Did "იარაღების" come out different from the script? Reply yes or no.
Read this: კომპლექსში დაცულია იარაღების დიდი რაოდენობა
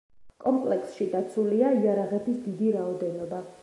no